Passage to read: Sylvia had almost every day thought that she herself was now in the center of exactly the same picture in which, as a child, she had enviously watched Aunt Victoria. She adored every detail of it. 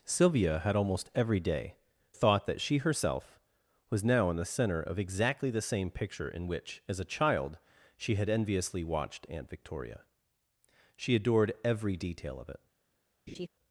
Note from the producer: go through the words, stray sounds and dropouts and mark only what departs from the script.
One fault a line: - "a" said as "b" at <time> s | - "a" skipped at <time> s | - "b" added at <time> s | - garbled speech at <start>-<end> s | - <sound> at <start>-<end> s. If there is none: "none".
- laugh at 13.3-13.5 s